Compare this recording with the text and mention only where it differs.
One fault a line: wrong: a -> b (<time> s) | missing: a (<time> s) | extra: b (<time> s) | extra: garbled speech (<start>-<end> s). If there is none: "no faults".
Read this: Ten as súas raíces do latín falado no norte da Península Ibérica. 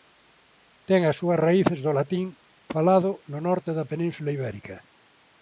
no faults